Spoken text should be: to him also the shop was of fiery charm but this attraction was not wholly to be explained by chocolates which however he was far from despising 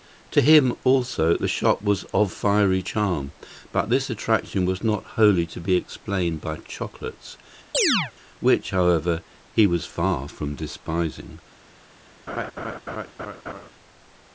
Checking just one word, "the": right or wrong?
right